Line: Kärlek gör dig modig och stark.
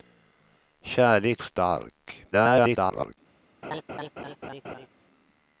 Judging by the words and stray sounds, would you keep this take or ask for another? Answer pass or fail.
fail